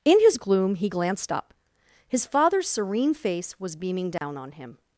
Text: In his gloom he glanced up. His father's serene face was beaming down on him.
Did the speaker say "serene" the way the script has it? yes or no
yes